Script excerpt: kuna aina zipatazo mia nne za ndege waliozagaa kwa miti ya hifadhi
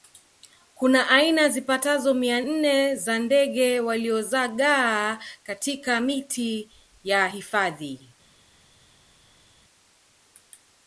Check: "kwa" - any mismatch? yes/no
yes